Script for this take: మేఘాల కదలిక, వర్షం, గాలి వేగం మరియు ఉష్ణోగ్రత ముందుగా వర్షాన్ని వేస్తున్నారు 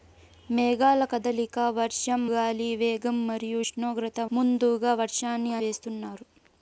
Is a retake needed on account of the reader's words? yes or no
no